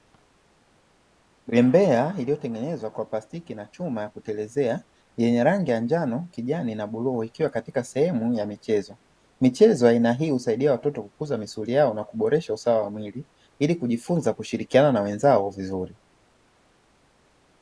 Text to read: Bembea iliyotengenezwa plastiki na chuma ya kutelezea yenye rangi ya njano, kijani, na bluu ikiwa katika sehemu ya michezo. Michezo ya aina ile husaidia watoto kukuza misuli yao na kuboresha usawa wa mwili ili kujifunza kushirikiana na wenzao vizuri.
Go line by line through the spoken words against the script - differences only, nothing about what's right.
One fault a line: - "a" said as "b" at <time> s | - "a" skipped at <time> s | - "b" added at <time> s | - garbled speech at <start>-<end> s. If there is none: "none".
- "kwa" added at 2.9 s
- "ile" said as "hii" at 10.1 s